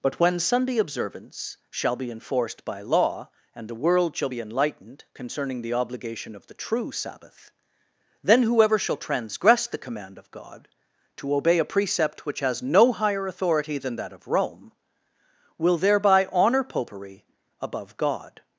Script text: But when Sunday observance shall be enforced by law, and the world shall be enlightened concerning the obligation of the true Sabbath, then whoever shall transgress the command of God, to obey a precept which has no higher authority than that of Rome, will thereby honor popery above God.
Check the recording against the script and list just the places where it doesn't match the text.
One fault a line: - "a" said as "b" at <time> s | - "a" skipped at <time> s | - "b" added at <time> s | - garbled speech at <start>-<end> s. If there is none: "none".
none